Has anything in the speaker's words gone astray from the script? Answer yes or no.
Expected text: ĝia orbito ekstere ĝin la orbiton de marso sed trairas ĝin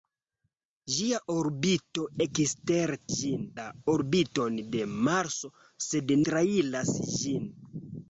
no